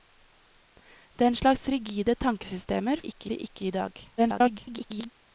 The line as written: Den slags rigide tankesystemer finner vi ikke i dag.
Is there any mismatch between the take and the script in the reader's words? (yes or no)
yes